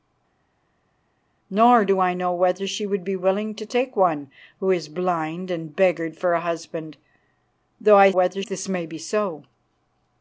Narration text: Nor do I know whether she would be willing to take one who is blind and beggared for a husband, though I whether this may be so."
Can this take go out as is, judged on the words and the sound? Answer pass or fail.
pass